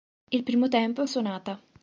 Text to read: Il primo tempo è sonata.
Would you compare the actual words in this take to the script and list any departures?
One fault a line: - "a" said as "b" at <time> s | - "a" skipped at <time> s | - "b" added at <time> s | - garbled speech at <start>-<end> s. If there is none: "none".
none